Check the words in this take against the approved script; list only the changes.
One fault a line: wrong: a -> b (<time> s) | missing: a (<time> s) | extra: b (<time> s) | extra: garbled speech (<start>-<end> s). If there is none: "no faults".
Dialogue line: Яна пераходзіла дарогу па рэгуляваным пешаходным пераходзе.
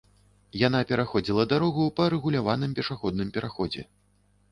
no faults